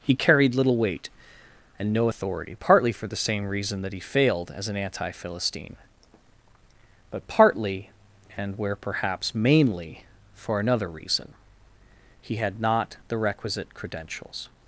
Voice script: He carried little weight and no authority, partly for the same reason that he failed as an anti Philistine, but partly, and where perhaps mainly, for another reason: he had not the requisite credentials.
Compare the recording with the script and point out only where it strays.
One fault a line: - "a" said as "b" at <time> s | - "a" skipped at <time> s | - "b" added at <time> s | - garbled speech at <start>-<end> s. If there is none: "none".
none